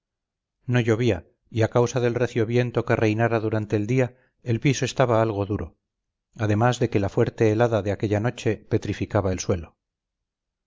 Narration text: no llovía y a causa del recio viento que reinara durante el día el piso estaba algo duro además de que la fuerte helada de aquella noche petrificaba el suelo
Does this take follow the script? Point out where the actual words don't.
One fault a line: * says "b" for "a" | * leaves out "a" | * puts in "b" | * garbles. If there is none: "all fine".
all fine